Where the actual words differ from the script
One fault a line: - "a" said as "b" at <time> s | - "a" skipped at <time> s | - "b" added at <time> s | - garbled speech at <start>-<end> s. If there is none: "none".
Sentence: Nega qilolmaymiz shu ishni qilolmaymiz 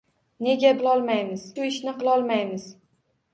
none